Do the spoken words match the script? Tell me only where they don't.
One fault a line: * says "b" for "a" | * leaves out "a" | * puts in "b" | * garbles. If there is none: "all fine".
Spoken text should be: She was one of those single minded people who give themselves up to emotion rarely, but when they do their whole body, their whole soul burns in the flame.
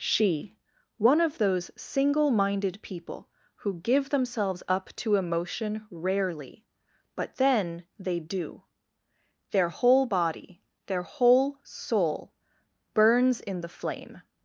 * leaves out "was"
* says "then" for "when"